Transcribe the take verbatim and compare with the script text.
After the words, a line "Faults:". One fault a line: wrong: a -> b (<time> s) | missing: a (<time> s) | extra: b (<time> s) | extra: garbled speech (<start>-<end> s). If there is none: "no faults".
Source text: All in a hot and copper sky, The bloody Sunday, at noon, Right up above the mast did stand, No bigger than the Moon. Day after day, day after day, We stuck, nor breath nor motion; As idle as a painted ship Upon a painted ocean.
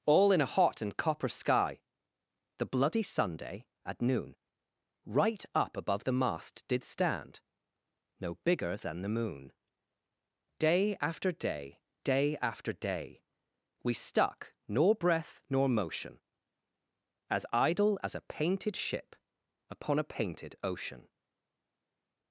All in a hot and copper sky, The bloody Sunday, at noon, Right up above the mast did stand, No bigger than the Moon. Day after day, day after day, We stuck, nor breath nor motion; As idle as a painted ship Upon a painted ocean.
Faults:
no faults